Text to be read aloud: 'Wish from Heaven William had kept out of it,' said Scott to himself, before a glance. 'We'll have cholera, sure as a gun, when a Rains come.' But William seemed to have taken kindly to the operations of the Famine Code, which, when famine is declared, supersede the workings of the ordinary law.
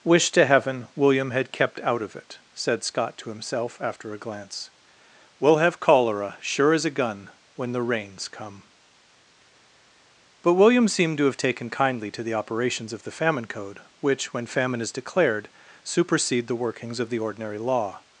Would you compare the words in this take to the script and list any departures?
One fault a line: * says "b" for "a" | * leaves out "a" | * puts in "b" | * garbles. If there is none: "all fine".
* says "to" for "from"
* says "after" for "before"
* says "the" for "a"